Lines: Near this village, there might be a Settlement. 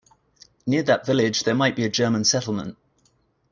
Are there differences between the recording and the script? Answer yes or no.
yes